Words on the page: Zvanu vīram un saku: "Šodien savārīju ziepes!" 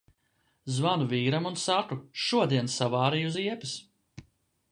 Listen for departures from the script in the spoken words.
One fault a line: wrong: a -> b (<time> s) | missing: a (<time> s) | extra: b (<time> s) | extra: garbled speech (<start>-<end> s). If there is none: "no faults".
no faults